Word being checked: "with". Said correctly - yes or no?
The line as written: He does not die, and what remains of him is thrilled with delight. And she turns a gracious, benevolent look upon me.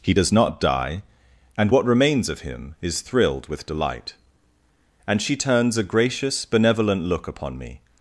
yes